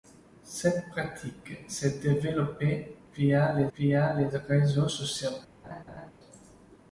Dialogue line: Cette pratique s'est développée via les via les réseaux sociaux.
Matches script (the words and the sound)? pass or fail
fail